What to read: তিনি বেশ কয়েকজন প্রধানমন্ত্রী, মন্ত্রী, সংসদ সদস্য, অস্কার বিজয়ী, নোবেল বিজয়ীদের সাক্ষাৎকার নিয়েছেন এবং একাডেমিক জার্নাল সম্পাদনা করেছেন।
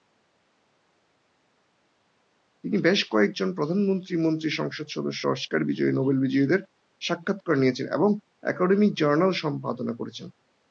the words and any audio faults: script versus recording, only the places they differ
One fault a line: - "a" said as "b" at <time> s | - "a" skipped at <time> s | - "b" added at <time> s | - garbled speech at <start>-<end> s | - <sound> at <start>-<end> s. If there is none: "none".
none